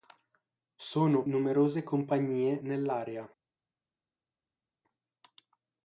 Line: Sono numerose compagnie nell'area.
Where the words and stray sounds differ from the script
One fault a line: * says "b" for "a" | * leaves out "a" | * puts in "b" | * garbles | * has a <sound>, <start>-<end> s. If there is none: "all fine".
all fine